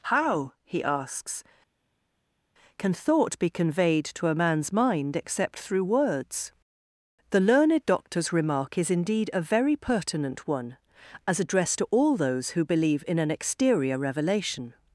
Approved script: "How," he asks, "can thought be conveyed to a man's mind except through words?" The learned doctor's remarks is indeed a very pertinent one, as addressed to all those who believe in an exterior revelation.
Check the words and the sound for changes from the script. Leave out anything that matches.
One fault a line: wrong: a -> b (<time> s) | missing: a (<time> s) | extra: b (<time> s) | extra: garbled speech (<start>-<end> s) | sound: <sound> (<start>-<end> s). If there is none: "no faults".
wrong: remarks -> remark (8.3 s)